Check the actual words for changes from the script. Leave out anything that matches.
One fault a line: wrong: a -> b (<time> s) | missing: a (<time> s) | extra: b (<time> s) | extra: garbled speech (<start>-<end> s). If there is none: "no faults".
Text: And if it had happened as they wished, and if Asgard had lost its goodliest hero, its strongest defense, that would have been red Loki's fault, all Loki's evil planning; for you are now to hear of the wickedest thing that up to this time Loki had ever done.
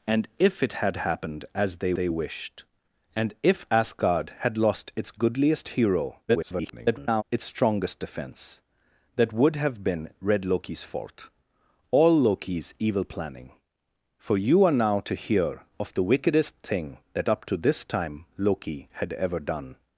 extra: they (1.9 s)
extra: garbled speech (6.3-7.2 s)